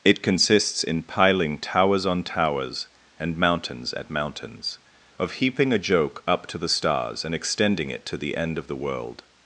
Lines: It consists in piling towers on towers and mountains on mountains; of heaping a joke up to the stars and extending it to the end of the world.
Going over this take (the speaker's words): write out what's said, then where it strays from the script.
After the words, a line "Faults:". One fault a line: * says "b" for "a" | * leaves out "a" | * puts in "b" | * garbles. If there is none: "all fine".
It consists in piling towers on towers and mountains at mountains; of heaping a joke up to the stars and extending it to the end of the world.
Faults:
* says "at" for "on"